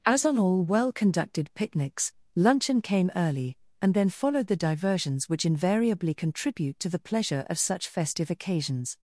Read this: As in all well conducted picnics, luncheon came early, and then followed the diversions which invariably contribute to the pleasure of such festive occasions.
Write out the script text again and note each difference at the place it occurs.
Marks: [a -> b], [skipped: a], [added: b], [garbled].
As [in -> on] all well conducted picnics, luncheon came early, and then followed the diversions which invariably contribute to the pleasure of such festive occasions.